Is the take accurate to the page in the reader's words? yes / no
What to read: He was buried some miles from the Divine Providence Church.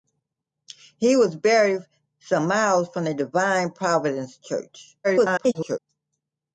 no